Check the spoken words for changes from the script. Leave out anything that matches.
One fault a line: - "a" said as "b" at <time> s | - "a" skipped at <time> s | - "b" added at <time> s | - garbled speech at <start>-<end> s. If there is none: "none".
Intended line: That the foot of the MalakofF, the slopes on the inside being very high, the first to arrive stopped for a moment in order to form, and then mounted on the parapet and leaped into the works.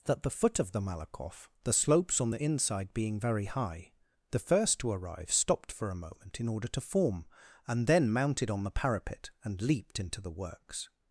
none